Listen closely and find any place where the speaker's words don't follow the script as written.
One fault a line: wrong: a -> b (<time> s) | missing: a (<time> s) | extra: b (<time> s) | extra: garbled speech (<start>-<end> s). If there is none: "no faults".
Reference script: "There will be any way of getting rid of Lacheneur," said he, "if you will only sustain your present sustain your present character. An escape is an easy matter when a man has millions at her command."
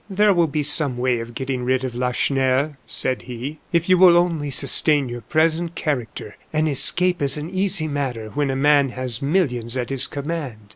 wrong: any -> some (0.6 s)
missing: sustain your present (5.8 s)
wrong: her -> his (9.9 s)